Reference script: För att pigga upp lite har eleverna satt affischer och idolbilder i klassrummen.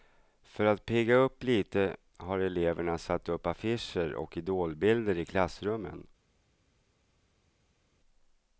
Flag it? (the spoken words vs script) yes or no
yes